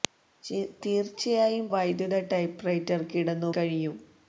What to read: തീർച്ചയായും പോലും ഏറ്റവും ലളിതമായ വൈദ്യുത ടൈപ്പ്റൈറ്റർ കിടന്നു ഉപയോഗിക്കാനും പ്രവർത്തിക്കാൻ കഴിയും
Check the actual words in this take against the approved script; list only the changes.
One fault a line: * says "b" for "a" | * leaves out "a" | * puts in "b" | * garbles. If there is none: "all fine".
* leaves out "പോലും ഏറ്റവും ലളിതമായ"
* leaves out "ഉപയോഗിക്കാനും പ്രവർത്തിക്കാൻ"